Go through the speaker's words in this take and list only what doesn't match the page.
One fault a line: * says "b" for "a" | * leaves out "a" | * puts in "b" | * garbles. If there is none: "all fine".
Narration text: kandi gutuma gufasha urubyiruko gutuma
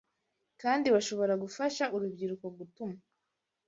* says "bashobora" for "gutuma"